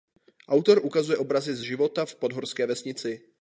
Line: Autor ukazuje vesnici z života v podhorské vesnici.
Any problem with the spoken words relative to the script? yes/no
yes